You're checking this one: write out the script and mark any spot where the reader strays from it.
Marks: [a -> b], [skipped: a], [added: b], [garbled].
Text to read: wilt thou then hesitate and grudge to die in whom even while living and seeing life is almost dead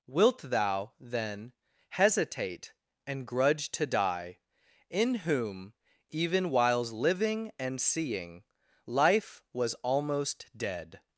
wilt thou then hesitate and grudge to die in whom even [while -> whiles] living and seeing life [is -> was] almost dead